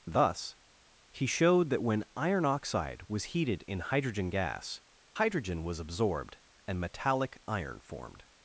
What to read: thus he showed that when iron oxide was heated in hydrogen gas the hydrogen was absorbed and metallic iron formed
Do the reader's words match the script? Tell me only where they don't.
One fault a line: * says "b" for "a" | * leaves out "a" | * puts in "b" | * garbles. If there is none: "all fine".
* leaves out "the"